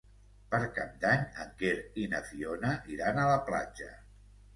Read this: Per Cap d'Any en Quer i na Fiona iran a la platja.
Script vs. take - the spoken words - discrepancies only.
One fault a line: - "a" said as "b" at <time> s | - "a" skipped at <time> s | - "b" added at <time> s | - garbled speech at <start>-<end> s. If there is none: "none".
none